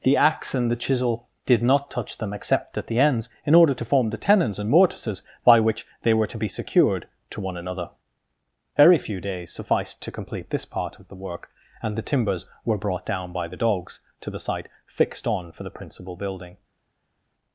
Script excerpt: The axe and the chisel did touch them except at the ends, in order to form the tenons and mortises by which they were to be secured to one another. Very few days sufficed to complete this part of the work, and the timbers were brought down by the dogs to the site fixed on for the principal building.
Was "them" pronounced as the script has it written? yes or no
yes